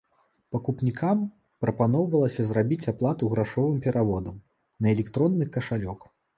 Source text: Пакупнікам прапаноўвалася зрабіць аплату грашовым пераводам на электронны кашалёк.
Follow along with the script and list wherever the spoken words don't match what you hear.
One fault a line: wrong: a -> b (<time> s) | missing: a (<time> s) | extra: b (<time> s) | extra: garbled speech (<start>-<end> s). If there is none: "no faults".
no faults